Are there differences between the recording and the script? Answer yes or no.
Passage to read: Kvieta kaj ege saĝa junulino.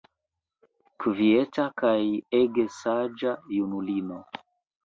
no